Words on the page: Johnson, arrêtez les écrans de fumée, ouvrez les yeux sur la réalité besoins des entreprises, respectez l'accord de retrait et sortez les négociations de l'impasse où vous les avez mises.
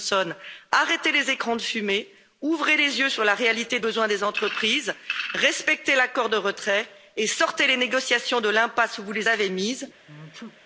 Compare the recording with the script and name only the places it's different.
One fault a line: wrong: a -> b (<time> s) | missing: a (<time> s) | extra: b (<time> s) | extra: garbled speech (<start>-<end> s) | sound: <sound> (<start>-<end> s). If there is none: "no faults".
sound: sneeze (10.1-10.6 s)